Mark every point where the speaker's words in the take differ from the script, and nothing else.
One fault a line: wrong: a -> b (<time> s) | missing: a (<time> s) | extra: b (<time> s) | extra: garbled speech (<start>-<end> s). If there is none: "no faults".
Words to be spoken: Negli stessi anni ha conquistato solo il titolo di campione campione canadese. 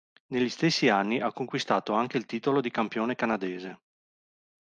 wrong: solo -> anche (1.9 s)
missing: campione (3.1 s)